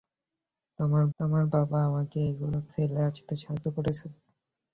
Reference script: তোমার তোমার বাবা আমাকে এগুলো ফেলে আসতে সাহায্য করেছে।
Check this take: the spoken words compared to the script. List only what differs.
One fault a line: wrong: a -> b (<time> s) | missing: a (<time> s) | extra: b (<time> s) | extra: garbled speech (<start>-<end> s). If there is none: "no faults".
no faults